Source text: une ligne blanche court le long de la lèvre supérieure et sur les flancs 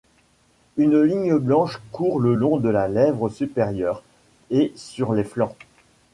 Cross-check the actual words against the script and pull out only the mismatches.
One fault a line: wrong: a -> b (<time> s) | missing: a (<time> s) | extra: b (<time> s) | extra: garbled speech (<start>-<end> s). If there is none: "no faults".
no faults